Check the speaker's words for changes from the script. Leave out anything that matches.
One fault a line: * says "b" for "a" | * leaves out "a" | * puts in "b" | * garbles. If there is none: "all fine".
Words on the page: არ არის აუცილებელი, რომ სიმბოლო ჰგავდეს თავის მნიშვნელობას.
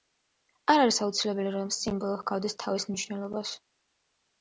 all fine